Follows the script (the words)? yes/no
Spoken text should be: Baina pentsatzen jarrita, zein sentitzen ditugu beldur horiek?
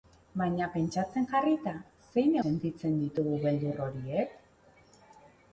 yes